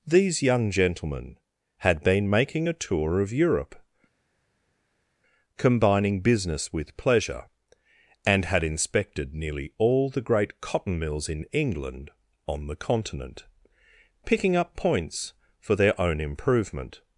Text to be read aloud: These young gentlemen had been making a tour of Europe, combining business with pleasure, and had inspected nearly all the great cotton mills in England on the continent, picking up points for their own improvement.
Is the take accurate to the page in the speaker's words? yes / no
yes